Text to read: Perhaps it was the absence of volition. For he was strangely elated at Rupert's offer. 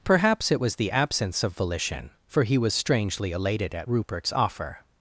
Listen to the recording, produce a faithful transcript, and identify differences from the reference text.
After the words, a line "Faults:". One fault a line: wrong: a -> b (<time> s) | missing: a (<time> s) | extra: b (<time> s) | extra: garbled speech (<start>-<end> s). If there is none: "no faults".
Perhaps it was the absence of volition. For he was strangely elated at Rupert's offer.
Faults:
no faults